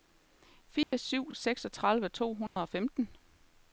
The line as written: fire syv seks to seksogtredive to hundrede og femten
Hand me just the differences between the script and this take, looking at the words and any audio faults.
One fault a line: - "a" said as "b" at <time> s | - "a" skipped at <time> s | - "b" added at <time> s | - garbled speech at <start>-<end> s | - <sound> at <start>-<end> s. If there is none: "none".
- dropout at 0.8-0.9 s
- "seks to" skipped at 1.3 s
- dropout at 2.5-2.6 s